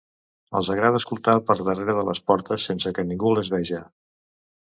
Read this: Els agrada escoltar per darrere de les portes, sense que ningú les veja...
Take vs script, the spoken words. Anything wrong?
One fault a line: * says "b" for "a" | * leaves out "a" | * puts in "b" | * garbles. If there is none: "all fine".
all fine